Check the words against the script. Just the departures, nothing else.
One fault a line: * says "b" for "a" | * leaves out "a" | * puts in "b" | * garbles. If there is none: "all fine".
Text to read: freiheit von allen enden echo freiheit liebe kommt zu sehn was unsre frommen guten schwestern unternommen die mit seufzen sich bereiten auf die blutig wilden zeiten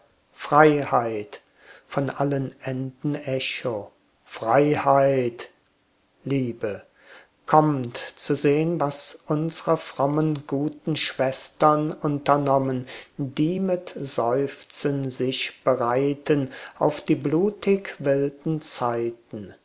all fine